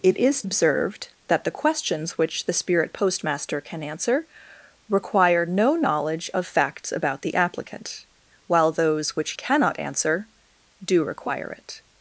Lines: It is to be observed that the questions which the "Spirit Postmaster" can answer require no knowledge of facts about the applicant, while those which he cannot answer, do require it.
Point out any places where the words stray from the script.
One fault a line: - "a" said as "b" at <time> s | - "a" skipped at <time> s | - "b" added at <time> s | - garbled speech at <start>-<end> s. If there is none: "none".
- "to be" skipped at 0.4 s
- "he" skipped at 9.3 s